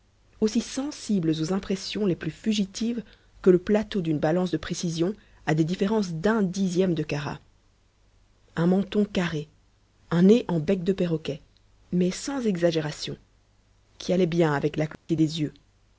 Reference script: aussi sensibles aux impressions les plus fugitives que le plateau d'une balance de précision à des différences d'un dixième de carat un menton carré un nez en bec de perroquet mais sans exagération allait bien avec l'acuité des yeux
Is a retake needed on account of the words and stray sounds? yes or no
yes